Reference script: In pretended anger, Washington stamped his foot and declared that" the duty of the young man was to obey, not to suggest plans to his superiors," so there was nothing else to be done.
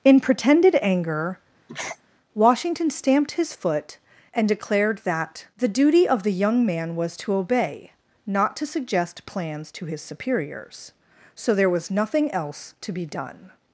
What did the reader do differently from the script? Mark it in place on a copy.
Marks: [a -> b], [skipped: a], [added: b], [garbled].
In pretended anger, Washington stamped his foot and declared that" the duty of the young man was to obey, not to suggest plans to his superiors," so there was nothing else to be done.